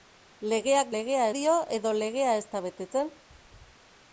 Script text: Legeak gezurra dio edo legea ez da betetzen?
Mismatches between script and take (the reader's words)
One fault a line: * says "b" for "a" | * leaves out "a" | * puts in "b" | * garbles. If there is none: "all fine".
* says "legea" for "gezurra"